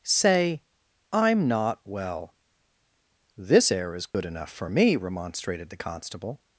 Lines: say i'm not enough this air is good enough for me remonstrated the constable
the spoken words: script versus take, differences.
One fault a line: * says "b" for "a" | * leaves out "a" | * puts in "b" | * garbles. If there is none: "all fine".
* says "well" for "enough"